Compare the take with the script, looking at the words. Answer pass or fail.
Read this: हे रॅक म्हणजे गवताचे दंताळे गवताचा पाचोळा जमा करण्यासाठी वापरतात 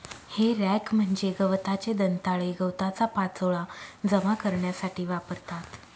pass